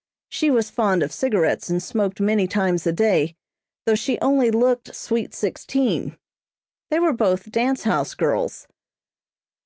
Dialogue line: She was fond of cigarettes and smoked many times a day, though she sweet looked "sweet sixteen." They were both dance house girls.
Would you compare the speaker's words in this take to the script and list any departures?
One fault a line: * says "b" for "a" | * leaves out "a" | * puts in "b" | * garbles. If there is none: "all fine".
* says "only" for "sweet"